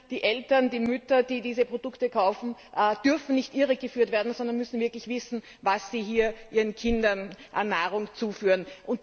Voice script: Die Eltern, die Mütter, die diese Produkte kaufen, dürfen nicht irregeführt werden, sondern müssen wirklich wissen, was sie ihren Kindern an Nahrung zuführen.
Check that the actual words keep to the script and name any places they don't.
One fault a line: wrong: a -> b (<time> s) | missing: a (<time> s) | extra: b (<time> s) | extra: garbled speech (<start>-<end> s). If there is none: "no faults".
no faults